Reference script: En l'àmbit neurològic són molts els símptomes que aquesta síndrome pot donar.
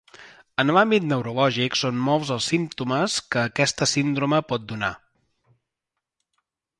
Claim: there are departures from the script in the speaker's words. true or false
false